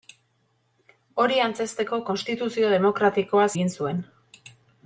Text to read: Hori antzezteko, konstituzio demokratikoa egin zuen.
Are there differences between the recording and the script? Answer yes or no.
no